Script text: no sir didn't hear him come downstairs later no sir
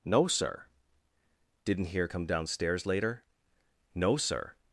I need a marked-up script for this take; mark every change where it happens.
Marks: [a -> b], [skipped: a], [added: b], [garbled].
no sir didn't hear [skipped: him] come downstairs later no sir